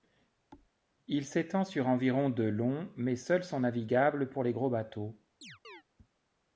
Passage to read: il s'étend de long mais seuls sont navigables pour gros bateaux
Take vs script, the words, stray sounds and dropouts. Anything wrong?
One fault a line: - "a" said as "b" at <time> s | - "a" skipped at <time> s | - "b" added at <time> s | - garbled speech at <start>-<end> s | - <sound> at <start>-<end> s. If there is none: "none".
- thud at 0.5-0.7 s
- "sur environ" added at 1.6 s
- "les" added at 4.4 s
- chirp at 5.4-5.8 s